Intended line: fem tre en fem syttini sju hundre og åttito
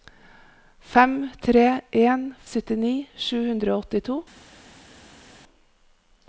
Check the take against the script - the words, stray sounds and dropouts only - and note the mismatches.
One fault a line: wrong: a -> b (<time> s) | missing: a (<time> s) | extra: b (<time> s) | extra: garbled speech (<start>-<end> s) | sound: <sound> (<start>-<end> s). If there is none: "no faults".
missing: fem (2.2 s)